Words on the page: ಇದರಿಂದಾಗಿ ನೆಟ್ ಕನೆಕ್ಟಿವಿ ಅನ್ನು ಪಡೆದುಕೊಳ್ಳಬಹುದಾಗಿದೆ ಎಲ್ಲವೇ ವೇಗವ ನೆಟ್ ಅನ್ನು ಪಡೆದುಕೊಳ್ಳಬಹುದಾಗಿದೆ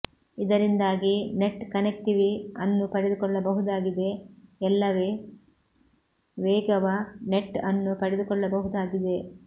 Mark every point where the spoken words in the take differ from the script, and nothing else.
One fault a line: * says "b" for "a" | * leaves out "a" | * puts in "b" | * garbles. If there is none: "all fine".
all fine